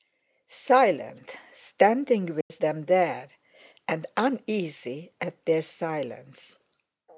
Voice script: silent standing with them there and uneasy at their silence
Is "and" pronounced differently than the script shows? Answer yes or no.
no